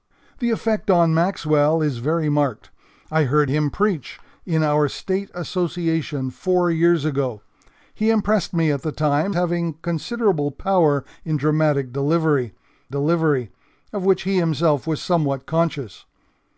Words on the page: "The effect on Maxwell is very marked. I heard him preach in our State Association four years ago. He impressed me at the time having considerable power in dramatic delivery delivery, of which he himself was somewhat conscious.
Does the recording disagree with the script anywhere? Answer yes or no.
no